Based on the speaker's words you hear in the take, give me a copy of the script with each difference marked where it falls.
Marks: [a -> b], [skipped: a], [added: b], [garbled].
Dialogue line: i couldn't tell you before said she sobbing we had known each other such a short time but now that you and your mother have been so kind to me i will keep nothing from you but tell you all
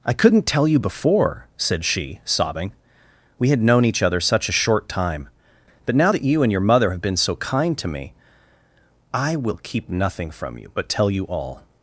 i couldn't tell you before said she sobbing we had known each other such a short time but now that you and your mother have been so kind to me i will keep nothing from you but tell you all